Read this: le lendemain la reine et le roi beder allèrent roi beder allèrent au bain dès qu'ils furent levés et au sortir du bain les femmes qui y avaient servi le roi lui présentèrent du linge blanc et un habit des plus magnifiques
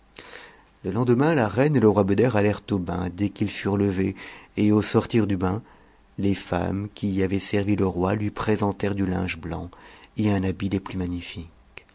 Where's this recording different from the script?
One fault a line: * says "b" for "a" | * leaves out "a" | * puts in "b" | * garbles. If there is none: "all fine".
* leaves out "roi beder allèrent"